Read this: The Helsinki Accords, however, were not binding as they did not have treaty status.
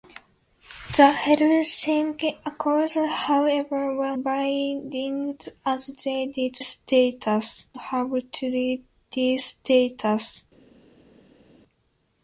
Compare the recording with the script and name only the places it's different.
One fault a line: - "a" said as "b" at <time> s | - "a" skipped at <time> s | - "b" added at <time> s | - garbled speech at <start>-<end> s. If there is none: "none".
- "not" skipped at 4.2 s
- "not" said as "status" at 6.6 s